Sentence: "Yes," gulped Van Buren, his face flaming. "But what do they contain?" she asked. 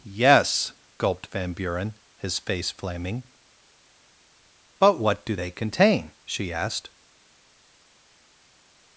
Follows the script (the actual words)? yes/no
yes